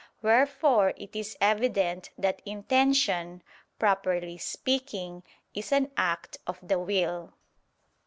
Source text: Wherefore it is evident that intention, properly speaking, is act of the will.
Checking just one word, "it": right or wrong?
right